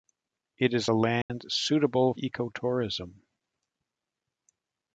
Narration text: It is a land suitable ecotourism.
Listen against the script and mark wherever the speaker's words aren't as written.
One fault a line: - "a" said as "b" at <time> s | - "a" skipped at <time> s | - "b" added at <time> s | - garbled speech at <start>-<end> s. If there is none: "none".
none